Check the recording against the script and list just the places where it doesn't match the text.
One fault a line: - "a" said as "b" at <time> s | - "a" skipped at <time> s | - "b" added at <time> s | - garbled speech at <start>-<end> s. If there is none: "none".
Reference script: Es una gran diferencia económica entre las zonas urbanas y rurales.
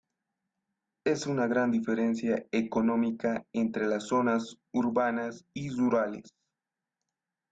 none